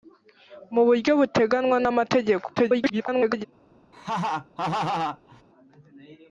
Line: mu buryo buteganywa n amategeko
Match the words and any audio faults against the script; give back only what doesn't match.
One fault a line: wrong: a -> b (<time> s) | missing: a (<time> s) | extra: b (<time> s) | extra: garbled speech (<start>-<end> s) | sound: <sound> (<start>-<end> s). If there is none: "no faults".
extra: garbled speech (2.6-3.4 s)
sound: laugh (3.9-5.4 s)